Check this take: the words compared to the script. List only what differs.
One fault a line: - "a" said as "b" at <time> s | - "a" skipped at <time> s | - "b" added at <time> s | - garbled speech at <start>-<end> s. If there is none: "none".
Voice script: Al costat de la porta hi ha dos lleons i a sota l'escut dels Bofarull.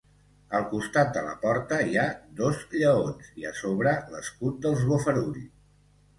- "sota" said as "sobre" at 3.6 s